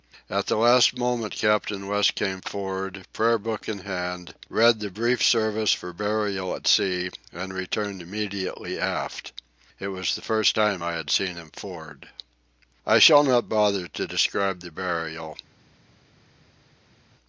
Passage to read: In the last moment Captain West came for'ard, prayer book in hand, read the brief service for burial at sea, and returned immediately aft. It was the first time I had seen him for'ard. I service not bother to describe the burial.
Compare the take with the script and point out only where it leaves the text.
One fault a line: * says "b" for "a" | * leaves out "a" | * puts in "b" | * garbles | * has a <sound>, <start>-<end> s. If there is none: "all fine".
* says "At" for "In"
* says "shall" for "service"